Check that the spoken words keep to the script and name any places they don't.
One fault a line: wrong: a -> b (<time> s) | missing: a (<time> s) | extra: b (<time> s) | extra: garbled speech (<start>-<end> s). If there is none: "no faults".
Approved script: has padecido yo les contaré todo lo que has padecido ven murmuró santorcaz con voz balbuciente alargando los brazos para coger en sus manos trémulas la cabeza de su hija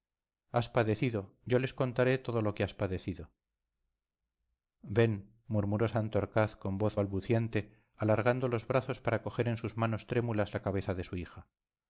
no faults